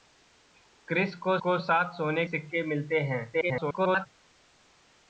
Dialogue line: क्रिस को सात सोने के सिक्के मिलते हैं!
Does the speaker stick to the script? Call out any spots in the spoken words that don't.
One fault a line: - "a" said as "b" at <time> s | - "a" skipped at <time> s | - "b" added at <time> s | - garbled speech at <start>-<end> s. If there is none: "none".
- "को" added at 1.3 s
- "के" skipped at 2.3 s
- garbled speech at 3.3-4.1 s